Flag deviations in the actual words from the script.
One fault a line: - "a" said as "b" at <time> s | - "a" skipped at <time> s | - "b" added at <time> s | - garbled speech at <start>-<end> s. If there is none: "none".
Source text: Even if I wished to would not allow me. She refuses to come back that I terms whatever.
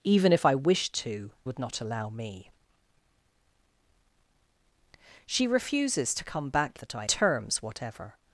none